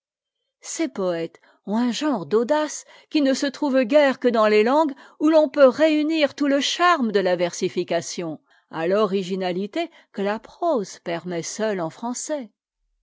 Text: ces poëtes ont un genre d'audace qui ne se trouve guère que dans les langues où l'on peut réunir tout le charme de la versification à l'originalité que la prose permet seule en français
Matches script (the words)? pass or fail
pass